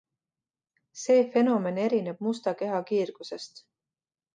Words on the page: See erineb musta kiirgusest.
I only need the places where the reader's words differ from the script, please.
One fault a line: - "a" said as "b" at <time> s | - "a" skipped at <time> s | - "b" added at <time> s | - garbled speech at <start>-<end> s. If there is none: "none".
- "fenomen" added at 1.4 s
- "keha" added at 2.6 s